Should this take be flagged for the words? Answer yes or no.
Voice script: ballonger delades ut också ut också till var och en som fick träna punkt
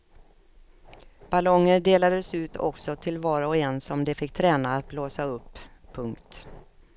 yes